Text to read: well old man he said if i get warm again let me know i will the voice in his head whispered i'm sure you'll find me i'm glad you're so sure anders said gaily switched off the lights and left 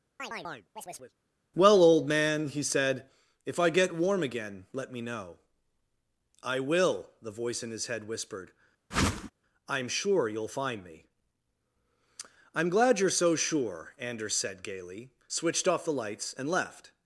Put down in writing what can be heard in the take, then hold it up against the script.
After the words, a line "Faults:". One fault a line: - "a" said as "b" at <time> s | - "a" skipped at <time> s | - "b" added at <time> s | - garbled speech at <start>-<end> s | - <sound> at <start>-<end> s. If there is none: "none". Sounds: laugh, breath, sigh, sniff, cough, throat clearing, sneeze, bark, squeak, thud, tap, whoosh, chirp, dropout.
well old man he said if i get warm again let me know i will the voice in his head whispered i'm sure you'll find me i'm glad you're so sure anders said gaily switched off the lights and left
Faults:
- chirp at 0.2-1.1 s
- whoosh at 8.9-9.3 s